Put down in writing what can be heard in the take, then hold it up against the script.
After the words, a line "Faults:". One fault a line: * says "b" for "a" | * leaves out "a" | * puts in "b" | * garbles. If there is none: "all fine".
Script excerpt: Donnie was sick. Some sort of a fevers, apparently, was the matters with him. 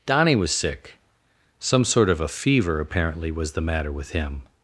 Donnie was sick. Some sort of a fever, apparently, was the matter with him.
Faults:
* says "fever" for "fevers"
* says "matter" for "matters"